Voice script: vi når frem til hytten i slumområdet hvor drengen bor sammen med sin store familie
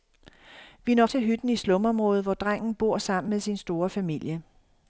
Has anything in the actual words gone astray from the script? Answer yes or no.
yes